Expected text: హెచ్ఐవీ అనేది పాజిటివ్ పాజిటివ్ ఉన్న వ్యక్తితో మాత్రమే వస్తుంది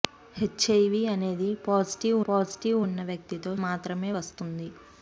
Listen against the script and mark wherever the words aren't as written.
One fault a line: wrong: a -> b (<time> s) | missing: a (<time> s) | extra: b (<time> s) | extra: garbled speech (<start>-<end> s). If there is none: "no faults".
no faults